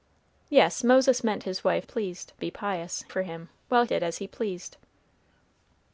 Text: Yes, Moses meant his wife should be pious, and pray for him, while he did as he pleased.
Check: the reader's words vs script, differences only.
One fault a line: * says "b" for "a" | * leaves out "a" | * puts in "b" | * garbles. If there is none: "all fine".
* says "pleased" for "should"
* leaves out "and pray"
* leaves out "he"